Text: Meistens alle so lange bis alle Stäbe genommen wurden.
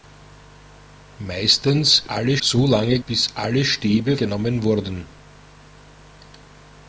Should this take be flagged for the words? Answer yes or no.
no